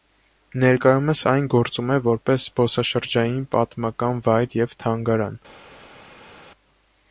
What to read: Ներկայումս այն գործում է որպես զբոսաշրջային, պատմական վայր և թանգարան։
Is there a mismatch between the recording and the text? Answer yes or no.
no